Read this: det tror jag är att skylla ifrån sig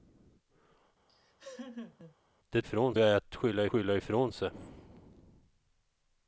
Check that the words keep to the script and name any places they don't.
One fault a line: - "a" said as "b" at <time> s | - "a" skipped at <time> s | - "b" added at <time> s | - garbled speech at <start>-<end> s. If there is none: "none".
- "tror" said as "ifrån" at 2.6 s
- "skylla" added at 3.7 s